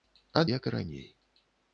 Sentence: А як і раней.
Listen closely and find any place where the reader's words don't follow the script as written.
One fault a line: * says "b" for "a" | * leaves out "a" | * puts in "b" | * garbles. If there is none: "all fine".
all fine